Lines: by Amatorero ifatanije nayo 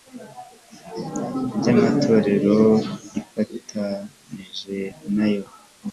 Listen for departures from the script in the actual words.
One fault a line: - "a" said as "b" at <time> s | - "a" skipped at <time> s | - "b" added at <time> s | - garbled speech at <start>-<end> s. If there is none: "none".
none